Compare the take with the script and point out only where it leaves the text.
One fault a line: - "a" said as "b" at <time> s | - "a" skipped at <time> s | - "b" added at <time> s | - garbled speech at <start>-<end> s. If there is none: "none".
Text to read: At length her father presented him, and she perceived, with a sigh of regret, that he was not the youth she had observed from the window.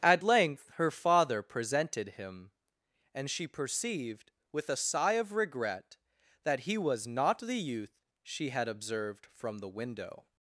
none